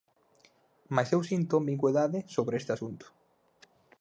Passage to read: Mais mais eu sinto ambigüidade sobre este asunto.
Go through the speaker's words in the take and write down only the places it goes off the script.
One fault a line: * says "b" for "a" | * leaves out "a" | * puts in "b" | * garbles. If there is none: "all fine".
* leaves out "mais"